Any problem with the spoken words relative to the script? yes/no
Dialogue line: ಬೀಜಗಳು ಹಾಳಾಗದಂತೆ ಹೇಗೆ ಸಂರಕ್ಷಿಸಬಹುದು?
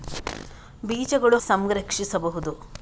yes